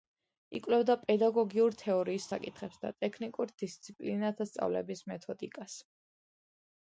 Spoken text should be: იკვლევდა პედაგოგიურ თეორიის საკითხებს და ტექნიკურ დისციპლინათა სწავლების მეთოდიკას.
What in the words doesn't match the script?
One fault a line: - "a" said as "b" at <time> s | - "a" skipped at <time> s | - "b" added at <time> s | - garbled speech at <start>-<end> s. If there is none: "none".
none